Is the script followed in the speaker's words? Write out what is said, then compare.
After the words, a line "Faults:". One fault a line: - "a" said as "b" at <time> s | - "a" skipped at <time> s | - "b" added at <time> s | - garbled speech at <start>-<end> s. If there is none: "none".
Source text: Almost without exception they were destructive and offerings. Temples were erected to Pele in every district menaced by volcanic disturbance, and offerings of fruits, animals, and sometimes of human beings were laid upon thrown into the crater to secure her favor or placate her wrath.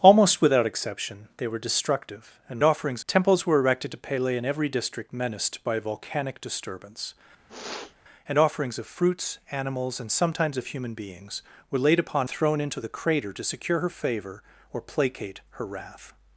Almost without exception they were destructive and offerings. Temples were erected to Pele in every district menaced by volcanic disturbance, and offerings of fruits, animals, and sometimes of human beings were laid upon thrown into the crater to secure her favor or placate her wrath.
Faults:
none